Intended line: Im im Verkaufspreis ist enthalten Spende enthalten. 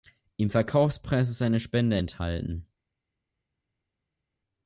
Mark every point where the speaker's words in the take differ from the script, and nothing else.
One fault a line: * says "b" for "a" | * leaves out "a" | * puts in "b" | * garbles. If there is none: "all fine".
* leaves out "im"
* says "eine" for "enthalten"